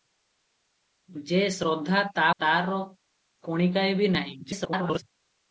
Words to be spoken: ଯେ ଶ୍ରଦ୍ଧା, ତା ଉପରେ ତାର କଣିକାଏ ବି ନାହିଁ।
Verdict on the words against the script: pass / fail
fail